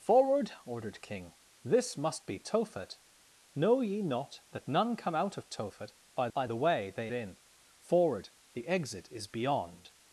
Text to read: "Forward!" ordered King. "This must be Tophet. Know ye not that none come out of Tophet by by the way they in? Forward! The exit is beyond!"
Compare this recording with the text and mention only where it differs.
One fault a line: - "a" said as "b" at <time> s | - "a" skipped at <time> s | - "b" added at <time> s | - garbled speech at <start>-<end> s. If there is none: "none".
none